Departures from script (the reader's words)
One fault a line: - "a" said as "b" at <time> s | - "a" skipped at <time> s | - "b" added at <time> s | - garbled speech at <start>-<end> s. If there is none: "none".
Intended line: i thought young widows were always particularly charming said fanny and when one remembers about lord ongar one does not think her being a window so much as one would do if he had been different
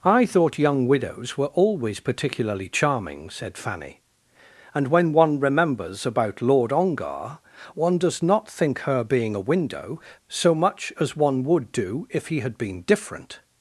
none